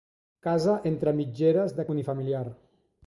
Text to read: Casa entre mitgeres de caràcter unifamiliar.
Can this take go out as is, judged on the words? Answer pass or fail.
fail